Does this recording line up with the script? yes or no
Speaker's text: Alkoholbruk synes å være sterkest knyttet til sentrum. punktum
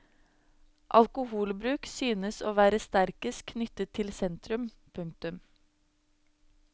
yes